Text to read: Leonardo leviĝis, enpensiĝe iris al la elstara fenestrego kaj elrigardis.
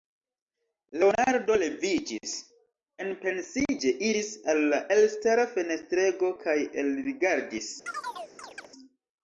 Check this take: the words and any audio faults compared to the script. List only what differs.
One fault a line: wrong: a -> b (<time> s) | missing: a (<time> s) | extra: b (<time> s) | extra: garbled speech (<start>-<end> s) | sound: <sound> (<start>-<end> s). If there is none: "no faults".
sound: chirp (7.9-8.7 s)